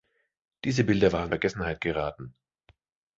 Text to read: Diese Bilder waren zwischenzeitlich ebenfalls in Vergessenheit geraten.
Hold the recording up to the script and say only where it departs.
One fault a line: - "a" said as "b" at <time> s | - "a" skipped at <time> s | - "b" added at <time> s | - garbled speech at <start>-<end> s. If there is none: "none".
- "zwischenzeitlich ebenfalls in" skipped at 1.3 s